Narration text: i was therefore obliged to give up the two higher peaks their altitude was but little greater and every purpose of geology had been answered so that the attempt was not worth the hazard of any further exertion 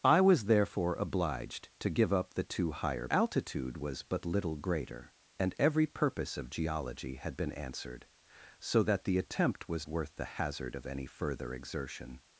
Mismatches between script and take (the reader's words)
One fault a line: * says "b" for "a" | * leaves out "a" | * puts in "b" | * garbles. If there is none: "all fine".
* leaves out "peaks their"
* leaves out "not"